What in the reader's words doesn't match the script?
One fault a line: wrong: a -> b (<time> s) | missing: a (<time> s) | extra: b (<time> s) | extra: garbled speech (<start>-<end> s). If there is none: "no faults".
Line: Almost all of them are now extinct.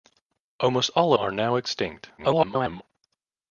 missing: of them (1.1 s)
extra: garbled speech (2.2-2.8 s)